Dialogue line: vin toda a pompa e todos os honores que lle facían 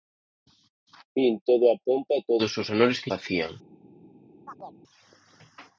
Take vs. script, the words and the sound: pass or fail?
fail